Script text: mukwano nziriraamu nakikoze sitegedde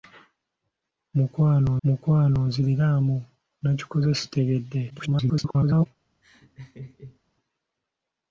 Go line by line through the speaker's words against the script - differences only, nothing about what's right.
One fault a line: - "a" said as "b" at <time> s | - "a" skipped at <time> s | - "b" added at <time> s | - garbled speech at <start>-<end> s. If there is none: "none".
- "mukwano" added at 1.8 s
- garbled speech at 4.9-5.9 s